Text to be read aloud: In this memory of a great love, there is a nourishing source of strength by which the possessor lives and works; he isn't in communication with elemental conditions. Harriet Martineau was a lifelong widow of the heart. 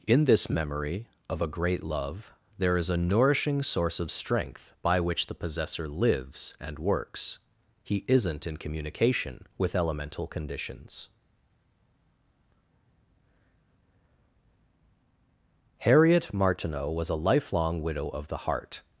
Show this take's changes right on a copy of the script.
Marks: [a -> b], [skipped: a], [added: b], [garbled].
In this memory of a great love, there is a nourishing source of strength by which the possessor lives and works; he isn't in communication with elemental conditions. Harriet Martineau was a lifelong widow of the heart.